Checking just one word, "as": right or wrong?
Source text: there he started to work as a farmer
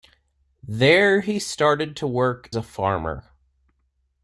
wrong